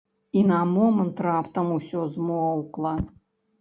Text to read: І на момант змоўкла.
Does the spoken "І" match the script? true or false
true